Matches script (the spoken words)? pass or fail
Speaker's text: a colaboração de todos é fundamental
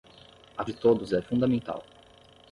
fail